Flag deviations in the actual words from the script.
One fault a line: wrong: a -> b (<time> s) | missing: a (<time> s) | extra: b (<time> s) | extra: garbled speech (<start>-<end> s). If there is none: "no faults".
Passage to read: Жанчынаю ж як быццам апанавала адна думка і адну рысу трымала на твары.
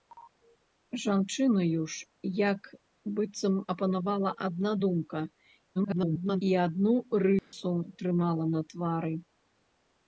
extra: garbled speech (5.7-6.4 s)